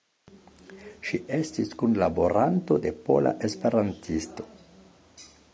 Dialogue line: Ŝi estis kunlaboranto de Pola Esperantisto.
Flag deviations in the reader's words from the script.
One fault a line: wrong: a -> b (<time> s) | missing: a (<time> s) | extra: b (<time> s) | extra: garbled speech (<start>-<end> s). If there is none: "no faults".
no faults